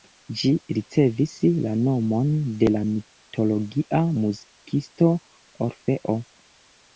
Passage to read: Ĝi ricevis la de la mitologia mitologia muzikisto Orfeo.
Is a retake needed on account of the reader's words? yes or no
yes